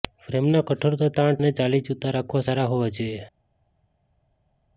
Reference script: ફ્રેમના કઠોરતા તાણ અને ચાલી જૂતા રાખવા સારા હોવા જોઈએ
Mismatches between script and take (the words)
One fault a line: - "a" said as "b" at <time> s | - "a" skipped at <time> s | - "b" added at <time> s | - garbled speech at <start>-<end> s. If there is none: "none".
none